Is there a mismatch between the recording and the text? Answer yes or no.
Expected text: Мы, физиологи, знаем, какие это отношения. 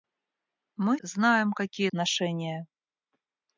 yes